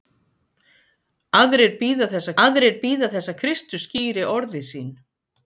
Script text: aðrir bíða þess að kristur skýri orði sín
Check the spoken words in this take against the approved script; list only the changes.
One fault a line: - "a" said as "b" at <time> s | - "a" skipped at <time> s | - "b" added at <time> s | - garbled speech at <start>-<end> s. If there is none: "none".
- "aðrir bíða þess" added at 2.4 s